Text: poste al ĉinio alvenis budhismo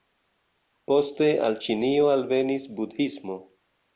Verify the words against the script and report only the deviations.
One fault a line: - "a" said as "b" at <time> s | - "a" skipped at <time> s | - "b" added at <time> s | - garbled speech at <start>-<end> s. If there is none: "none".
none